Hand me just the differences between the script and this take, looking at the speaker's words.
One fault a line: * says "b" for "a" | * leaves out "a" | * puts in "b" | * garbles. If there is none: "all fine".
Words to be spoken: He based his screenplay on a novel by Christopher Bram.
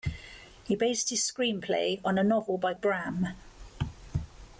* leaves out "Christopher"